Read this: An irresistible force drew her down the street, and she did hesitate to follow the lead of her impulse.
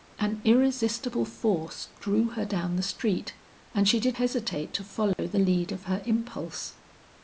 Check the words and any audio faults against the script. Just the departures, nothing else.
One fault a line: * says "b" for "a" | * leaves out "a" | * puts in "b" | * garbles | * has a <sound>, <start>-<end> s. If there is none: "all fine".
* has a dropout, 5.1-5.2 s